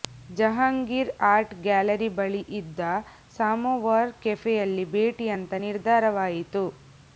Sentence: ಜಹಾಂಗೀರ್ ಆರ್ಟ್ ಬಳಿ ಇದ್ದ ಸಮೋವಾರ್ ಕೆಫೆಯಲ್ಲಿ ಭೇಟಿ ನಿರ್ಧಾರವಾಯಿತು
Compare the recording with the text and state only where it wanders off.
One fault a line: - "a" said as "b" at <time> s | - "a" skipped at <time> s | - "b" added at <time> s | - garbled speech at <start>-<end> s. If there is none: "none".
- "ಗ್ಯಾಲರಿ" added at 1.6 s
- "ಅಂತ" added at 5.4 s